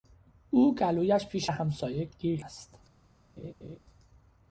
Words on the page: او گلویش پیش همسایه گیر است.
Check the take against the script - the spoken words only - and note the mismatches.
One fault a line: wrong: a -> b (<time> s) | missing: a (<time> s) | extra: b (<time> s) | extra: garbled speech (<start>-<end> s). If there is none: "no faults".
no faults